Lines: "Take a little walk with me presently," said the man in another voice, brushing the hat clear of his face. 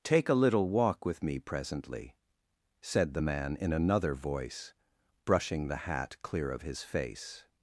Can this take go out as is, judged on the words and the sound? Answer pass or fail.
pass